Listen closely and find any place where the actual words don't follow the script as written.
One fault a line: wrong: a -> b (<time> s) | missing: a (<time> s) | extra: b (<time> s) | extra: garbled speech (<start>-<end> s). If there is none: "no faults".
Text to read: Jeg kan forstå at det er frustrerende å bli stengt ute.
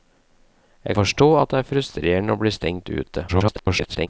missing: kan (1.0 s)
extra: garbled speech (3.3-4.1 s)